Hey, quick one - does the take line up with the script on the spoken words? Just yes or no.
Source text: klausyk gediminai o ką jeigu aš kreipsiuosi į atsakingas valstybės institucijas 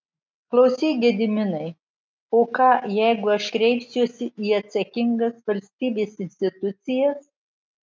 yes